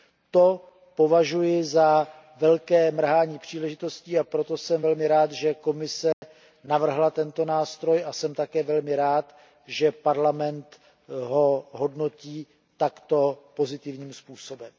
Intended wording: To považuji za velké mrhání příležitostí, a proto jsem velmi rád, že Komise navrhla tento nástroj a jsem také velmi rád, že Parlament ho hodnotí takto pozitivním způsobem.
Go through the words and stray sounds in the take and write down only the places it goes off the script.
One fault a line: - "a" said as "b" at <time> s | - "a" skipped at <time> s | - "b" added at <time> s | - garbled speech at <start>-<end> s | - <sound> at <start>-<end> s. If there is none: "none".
- dropout at 6.1-6.2 s